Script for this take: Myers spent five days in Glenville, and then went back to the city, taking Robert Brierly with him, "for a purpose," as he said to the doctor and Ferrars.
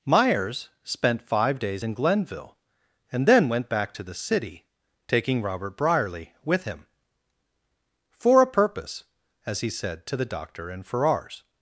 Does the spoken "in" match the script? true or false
true